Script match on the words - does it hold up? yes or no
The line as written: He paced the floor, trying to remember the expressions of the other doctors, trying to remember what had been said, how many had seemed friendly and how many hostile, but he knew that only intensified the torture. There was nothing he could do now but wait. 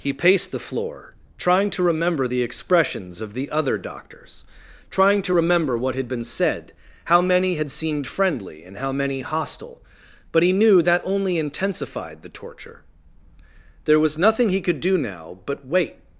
yes